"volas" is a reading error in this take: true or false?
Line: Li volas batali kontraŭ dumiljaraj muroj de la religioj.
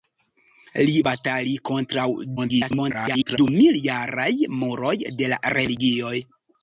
true